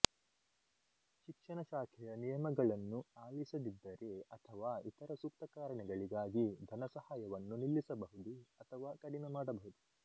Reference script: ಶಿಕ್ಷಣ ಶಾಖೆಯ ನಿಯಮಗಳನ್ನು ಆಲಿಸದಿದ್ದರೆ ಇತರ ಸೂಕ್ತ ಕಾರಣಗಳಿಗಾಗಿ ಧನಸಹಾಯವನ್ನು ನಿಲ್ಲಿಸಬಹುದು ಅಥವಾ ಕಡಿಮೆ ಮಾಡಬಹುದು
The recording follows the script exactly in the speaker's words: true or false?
false